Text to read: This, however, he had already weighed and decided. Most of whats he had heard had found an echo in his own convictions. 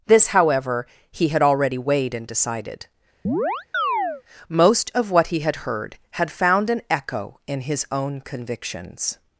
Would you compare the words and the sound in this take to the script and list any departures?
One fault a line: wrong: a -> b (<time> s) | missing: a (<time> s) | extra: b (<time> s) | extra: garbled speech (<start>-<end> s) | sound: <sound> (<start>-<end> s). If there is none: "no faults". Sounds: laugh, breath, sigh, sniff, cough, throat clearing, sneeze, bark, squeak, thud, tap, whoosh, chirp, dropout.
sound: chirp (3.2-4.2 s)
wrong: whats -> what (5.1 s)